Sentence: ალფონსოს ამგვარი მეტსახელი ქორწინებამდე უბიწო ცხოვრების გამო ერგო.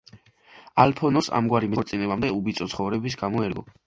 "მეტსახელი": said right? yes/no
no